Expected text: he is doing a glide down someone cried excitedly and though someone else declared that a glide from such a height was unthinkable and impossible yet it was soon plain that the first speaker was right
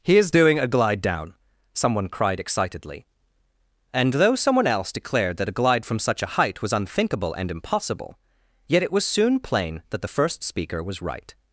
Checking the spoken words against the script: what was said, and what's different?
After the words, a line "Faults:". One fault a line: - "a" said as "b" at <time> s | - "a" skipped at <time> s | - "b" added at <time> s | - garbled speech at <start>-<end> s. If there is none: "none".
he is doing a glide down someone cried excitedly and though someone else declared that a glide from such a height was unthinkable and impossible yet it was soon plain that the first speaker was right
Faults:
none